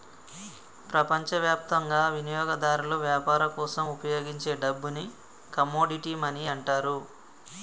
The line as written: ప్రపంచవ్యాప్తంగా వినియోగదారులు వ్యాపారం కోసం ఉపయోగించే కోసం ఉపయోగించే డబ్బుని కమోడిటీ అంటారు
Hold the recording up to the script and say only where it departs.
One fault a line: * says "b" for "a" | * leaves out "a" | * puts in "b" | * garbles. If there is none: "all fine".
* leaves out "కోసం ఉపయోగించే"
* puts in "మనీ"